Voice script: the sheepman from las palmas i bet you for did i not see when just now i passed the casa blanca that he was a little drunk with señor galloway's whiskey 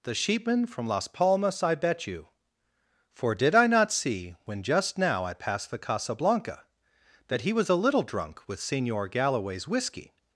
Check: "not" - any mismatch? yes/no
no